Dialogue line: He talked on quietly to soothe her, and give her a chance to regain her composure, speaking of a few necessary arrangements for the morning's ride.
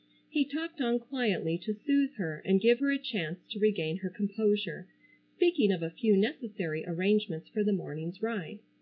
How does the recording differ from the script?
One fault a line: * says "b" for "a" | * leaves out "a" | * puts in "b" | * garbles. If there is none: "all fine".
all fine